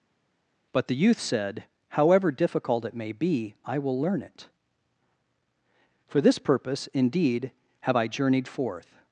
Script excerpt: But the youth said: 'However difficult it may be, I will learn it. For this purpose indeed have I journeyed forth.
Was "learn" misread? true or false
false